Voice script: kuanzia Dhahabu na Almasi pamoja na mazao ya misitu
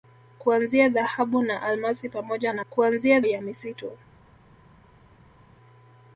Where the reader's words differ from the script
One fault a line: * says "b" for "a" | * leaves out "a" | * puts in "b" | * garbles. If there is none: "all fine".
* says "kuanzia" for "mazao"